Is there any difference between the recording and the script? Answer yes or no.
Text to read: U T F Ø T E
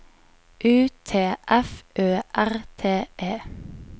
yes